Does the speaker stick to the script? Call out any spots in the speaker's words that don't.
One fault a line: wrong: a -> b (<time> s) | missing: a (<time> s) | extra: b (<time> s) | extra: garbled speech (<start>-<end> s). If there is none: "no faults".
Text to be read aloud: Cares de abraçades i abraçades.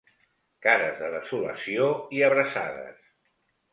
wrong: abraçades -> desolació (1.1 s)